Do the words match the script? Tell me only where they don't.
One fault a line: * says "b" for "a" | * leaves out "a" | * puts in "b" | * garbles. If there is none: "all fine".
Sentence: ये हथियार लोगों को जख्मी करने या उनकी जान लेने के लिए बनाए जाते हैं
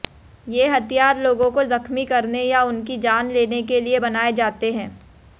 all fine